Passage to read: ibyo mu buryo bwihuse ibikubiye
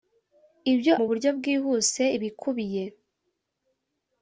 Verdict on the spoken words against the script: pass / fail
pass